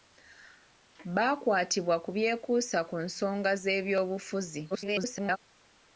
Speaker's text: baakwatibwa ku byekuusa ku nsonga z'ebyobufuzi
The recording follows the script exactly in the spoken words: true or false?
false